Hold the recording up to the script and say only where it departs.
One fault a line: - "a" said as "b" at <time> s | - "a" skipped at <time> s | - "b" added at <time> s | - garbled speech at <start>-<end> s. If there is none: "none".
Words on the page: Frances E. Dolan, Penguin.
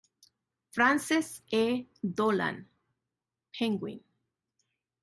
none